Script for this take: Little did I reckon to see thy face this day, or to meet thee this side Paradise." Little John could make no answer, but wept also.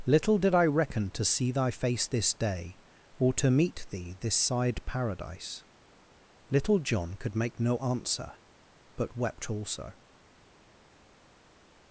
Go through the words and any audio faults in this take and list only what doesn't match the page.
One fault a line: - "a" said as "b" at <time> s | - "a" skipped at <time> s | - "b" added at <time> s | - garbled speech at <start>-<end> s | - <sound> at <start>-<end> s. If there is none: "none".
none